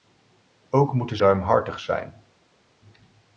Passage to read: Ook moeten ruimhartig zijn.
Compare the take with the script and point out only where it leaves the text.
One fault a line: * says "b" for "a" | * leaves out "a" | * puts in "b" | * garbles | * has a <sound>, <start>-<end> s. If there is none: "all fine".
all fine